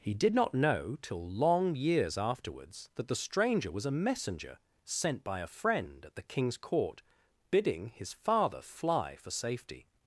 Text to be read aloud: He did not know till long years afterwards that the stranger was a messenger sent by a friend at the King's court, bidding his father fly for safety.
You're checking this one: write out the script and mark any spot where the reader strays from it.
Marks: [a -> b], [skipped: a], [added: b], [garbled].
He did not know till long years afterwards that the stranger was a messenger sent by a friend at the King's court, bidding his father fly for safety.